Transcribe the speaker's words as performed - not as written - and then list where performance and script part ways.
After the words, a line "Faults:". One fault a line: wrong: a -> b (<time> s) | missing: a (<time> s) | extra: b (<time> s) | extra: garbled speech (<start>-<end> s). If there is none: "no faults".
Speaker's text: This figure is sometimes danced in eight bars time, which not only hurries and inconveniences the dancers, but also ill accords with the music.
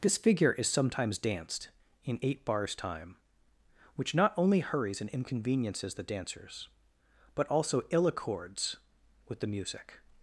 This figure is sometimes danced in eight bars time, which not only hurries and inconveniences the dancers, but also ill accords with the music.
Faults:
no faults